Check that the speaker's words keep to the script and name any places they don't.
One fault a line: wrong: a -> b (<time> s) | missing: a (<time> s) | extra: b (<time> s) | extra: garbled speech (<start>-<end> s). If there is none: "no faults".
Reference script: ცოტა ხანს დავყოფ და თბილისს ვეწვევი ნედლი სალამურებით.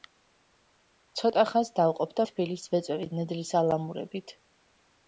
no faults